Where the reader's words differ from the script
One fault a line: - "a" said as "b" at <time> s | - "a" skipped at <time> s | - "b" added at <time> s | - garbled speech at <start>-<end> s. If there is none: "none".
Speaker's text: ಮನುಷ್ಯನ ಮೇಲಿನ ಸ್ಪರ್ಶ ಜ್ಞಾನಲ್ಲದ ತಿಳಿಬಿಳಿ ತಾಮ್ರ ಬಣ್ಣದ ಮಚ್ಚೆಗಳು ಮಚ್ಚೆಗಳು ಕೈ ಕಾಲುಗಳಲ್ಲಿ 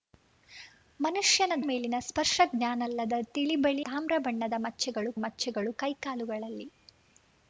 none